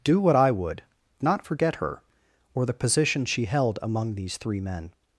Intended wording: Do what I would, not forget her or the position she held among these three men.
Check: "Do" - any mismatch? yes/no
no